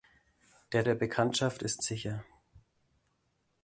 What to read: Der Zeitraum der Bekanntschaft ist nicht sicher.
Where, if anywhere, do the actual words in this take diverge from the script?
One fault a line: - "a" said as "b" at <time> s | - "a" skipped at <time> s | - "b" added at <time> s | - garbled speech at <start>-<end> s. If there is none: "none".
- "Zeitraum" skipped at 0.9 s
- "nicht" skipped at 1.8 s